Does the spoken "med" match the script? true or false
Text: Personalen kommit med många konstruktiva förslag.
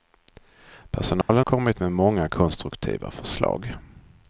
true